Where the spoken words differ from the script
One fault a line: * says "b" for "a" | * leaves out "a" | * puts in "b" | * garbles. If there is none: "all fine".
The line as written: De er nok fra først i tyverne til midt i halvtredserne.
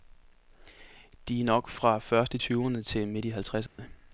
all fine